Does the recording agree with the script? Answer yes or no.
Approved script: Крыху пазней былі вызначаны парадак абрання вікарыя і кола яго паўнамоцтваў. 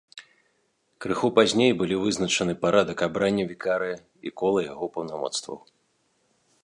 yes